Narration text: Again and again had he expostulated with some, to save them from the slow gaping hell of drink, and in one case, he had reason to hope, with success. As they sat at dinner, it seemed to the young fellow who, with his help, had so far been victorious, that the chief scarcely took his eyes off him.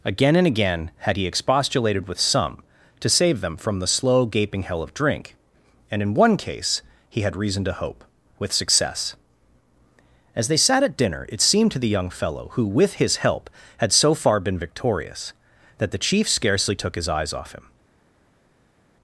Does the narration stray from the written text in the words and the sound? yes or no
no